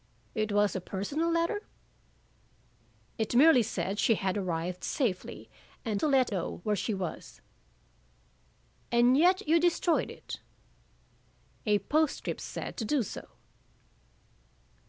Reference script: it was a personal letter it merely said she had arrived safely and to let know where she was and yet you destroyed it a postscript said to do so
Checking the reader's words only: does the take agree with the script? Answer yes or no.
yes